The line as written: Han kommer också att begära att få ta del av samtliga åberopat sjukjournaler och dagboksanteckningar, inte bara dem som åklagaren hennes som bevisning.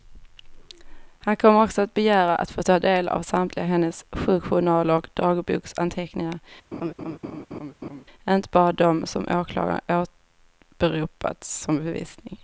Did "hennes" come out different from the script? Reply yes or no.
yes